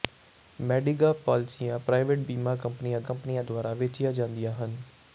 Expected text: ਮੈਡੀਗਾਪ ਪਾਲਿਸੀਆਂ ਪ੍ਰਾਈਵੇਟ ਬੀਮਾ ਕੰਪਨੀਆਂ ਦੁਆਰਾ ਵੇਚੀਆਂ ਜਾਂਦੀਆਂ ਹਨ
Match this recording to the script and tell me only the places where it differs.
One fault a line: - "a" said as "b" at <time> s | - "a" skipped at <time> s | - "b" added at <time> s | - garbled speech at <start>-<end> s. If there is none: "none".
- "ਕੰਪਨੀਆਂ" added at 3.0 s